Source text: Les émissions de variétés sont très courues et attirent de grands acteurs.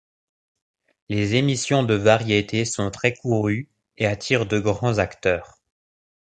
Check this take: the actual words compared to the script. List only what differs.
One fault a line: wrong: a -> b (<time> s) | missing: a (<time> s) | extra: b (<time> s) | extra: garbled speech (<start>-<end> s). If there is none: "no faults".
no faults